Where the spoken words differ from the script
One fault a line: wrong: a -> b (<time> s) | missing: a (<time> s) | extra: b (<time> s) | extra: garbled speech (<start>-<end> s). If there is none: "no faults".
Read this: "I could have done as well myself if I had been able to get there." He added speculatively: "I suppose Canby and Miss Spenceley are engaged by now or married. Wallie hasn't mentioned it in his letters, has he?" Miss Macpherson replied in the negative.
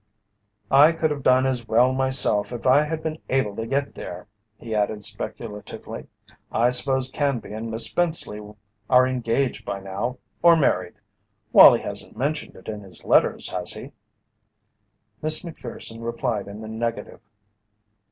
no faults